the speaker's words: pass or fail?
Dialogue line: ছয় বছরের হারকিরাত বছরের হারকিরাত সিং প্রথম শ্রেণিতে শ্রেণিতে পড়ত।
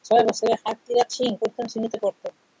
fail